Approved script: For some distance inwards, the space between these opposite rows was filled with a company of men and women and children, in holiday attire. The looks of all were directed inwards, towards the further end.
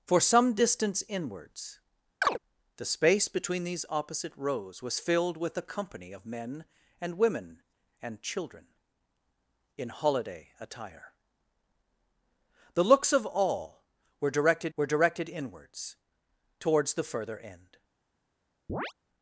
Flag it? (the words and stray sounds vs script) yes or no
yes